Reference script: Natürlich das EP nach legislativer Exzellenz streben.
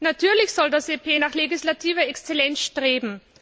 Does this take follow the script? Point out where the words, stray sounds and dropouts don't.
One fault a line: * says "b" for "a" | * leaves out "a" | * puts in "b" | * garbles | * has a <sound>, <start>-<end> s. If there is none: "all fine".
* puts in "soll"